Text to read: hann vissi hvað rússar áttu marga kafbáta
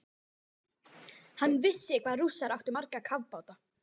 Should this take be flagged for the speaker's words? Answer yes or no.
no